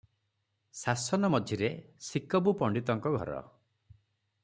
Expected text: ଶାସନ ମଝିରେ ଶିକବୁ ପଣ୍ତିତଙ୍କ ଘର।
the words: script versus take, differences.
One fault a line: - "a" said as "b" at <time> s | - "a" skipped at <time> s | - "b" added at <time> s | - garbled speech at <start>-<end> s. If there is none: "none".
none